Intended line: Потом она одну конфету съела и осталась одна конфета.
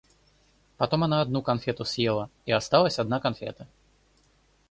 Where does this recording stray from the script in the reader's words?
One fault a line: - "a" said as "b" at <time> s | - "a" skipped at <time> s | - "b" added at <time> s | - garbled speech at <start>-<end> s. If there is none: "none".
none